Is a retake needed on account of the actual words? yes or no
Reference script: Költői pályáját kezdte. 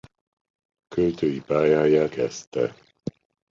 no